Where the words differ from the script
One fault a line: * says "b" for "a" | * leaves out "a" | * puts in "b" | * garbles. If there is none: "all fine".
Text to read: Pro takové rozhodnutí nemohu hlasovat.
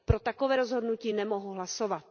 all fine